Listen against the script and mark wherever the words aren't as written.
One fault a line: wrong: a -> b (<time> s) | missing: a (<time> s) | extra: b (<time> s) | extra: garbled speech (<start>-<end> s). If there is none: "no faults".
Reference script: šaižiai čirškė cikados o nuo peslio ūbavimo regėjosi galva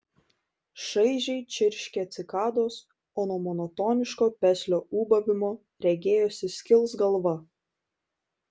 extra: monotoniško (3.5 s)
extra: skils (6.6 s)